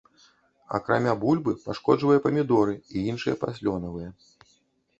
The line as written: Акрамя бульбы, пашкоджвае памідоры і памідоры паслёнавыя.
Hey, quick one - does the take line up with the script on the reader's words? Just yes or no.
no